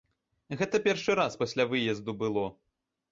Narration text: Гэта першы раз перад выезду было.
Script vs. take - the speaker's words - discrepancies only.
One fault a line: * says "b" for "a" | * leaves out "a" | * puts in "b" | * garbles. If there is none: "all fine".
* says "пасля" for "перад"